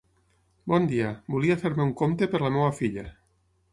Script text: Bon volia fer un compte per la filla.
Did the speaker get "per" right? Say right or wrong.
right